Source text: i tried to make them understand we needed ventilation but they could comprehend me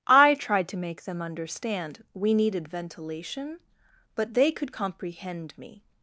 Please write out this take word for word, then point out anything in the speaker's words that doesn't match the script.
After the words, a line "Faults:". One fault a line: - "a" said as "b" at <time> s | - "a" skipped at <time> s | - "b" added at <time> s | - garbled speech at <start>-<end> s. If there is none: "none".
i tried to make them understand we needed ventilation but they could comprehend me
Faults:
none